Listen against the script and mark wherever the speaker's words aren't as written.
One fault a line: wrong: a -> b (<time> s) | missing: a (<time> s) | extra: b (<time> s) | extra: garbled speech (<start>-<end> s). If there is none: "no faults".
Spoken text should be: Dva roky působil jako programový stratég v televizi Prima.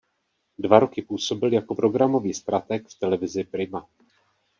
no faults